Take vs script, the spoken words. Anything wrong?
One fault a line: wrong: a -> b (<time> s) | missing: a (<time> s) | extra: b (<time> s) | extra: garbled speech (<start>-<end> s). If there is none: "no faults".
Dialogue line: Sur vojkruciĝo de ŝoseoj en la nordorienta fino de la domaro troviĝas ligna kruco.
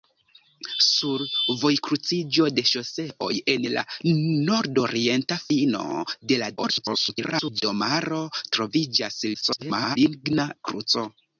extra: garbled speech (6.6-7.6 s)
extra: garbled speech (9.3-10.0 s)